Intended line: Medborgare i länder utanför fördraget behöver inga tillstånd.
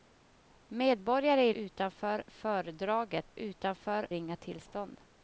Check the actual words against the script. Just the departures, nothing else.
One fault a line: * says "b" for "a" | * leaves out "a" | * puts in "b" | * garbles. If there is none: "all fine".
* leaves out "länder"
* says "utanför" for "behöver"